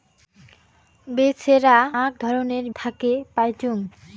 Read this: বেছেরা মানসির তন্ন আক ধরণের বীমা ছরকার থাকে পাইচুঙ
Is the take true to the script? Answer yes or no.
no